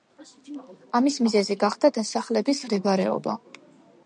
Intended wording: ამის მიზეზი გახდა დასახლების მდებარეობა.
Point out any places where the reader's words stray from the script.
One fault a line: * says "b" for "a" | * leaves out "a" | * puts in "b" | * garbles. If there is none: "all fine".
all fine